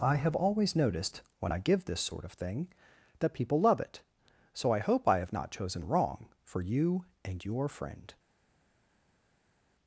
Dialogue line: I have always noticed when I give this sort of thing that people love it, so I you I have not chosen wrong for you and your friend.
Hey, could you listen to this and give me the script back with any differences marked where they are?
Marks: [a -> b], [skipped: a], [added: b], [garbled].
I have always noticed when I give this sort of thing that people love it, so I [you -> hope] I have not chosen wrong for you and your friend.